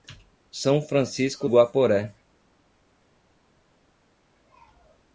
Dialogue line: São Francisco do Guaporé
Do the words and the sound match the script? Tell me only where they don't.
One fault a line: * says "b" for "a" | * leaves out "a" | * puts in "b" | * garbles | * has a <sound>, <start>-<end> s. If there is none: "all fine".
* leaves out "do"